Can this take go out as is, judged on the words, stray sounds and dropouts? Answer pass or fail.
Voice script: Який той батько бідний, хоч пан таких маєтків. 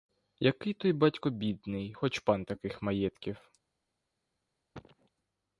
fail